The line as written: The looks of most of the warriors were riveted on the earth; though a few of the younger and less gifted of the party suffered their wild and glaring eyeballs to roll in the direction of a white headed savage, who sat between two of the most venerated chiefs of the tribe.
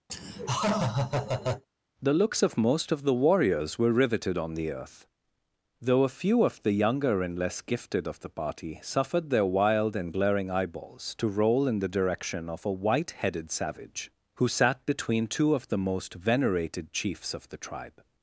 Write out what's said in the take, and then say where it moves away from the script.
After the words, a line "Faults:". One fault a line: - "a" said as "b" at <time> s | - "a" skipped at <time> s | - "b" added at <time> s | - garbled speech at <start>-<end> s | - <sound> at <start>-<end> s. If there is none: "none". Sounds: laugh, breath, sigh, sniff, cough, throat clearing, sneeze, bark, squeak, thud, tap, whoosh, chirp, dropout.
The looks of most of the warriors were riveted on the earth; though a few of the younger and less gifted of the party suffered their wild and glaring eyeballs to roll in the direction of a white headed savage, who sat between two of the most venerated chiefs of the tribe.
Faults:
- laugh at 0.1-1.6 s